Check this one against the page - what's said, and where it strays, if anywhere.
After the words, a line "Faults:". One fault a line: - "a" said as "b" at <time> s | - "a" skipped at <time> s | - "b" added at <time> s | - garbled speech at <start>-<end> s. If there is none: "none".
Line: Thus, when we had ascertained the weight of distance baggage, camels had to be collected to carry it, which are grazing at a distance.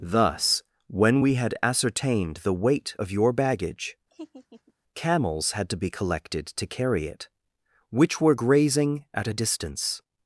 Thus, when we had ascertained the weight of your baggage, camels had to be collected to carry it, which were grazing at a distance.
Faults:
- "distance" said as "your" at 3.1 s
- "are" said as "were" at 8.2 s